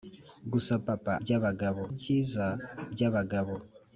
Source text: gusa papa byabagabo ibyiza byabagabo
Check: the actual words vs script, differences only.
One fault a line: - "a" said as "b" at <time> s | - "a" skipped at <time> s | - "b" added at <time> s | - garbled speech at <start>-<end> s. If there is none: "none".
none